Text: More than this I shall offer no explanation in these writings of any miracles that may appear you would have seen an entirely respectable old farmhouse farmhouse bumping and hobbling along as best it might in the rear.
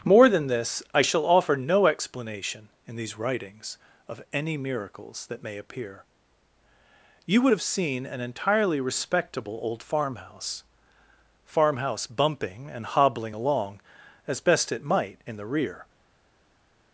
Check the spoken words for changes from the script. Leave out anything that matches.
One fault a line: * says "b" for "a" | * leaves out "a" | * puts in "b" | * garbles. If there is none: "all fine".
all fine